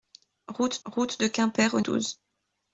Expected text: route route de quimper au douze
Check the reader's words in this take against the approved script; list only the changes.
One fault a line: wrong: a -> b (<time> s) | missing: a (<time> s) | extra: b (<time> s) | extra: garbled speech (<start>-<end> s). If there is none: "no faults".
no faults